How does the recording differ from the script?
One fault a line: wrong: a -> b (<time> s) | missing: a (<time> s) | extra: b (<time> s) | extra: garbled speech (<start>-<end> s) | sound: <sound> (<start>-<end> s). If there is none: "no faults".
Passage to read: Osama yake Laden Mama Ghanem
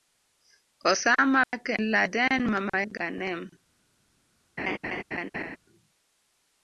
sound: dropout (1.4-1.5 s)
sound: laugh (4.6-5.6 s)